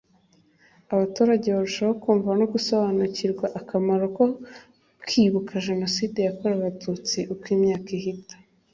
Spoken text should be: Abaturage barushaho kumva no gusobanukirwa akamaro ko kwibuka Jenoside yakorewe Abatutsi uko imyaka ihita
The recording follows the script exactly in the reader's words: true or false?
true